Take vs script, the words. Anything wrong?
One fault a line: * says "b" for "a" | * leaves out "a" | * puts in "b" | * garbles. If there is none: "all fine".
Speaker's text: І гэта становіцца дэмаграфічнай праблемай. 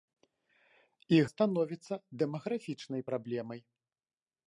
* leaves out "гэта"